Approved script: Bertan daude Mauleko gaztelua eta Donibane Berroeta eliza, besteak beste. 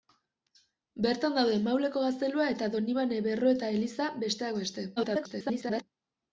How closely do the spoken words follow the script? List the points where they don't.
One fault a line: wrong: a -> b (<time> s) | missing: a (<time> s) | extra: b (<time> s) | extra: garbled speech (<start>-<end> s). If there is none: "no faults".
extra: garbled speech (5.0-5.8 s)